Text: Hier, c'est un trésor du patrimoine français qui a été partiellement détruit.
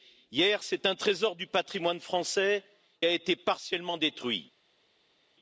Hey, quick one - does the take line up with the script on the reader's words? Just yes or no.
no